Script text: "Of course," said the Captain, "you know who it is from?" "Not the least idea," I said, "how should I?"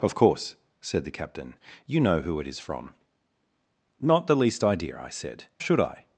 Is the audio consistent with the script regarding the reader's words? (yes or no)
no